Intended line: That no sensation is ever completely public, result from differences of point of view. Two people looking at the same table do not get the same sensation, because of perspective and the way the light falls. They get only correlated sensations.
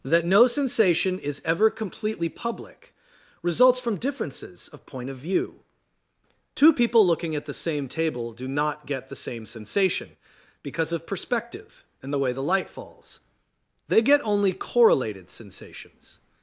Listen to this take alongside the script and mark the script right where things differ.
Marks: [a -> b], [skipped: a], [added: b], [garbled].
That no sensation is ever completely public, [result -> results] from differences of point of view. Two people looking at the same table do not get the same sensation, because of perspective and the way the light falls. They get only correlated sensations.